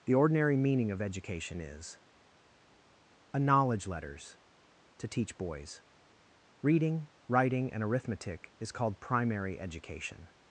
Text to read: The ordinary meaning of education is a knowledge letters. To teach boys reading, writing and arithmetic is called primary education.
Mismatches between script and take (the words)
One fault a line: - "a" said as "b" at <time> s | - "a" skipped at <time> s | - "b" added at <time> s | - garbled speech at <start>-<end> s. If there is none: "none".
none